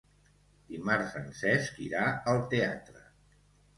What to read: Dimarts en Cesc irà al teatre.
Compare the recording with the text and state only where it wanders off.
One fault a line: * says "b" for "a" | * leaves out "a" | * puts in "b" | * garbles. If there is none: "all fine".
all fine